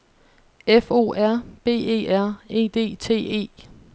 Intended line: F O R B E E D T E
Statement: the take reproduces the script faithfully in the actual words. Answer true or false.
false